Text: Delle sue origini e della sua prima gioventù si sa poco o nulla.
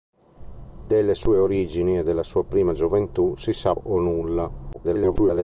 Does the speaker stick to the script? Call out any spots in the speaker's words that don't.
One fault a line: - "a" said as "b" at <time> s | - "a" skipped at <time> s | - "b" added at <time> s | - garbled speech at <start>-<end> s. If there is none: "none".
- "poco" skipped at 3.8 s
- garbled speech at 4.7-5.4 s